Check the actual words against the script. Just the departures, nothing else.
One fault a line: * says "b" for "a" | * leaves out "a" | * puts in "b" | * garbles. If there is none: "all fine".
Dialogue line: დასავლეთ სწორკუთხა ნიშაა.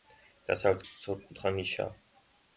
all fine